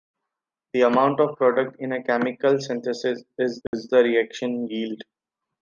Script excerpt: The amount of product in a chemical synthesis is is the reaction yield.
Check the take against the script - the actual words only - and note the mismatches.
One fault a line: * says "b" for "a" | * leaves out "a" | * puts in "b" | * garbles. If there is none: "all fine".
all fine